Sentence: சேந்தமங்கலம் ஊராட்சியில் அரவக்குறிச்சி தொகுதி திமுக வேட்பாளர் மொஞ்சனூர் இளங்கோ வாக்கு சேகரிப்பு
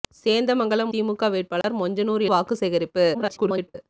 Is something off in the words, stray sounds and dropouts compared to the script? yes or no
yes